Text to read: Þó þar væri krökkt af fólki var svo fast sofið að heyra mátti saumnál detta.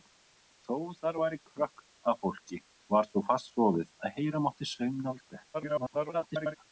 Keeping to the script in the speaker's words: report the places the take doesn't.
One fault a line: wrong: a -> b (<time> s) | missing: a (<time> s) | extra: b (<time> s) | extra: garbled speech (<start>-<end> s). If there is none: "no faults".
extra: garbled speech (5.5-6.6 s)